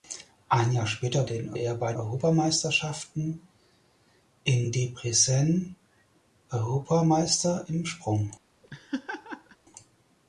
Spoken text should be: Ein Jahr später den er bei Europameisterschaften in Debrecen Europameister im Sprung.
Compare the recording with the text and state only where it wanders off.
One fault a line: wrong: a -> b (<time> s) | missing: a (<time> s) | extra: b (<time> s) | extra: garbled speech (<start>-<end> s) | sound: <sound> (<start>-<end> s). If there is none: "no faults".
sound: laugh (8.6-9.6 s)